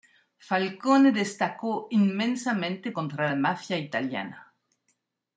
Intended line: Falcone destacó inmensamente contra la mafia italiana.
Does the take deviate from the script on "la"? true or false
false